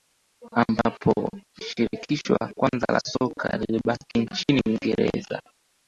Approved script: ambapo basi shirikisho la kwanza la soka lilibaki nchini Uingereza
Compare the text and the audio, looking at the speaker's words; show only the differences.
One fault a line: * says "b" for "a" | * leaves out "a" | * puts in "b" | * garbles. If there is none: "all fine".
* leaves out "basi"